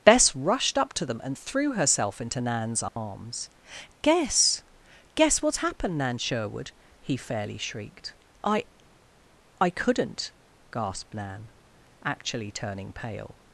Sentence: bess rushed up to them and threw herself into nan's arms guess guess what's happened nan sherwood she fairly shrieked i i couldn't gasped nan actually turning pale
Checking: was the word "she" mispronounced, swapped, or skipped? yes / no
yes